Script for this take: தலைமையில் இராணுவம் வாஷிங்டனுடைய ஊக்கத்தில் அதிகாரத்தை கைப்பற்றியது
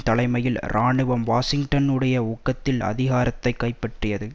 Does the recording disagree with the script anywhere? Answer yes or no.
no